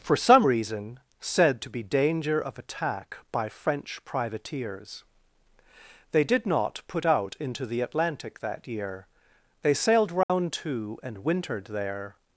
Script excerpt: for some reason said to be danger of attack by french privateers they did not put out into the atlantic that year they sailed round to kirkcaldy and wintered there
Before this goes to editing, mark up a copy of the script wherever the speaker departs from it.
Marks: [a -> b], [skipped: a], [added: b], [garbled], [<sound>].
for some reason said to be danger of attack by french privateers they did not put out into the atlantic that year they sailed round [dropout] to [skipped: kirkcaldy] and wintered there